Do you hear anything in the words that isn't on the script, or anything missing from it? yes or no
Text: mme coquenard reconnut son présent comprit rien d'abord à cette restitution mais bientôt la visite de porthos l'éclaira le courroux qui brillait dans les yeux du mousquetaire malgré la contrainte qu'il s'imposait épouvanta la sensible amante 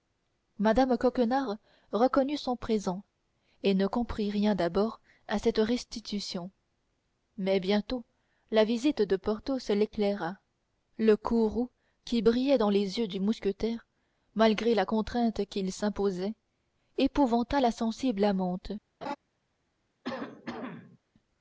yes